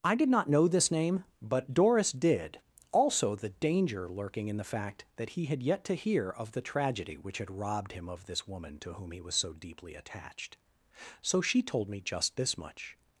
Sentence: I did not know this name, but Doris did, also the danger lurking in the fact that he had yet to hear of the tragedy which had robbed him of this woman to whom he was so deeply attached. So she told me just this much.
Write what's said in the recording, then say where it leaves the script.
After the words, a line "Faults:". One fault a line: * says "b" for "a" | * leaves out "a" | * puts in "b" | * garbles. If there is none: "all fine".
I did not know this name, but Doris did, also the danger lurking in the fact that he had yet to hear of the tragedy which had robbed him of this woman to whom he was so deeply attached. So she told me just this much.
Faults:
all fine